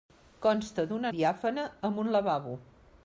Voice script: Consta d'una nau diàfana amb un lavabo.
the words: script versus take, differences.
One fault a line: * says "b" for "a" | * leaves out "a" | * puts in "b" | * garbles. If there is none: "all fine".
* leaves out "nau"